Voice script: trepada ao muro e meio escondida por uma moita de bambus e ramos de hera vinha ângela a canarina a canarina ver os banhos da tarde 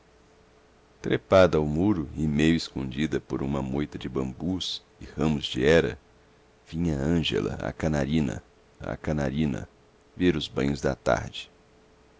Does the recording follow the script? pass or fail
pass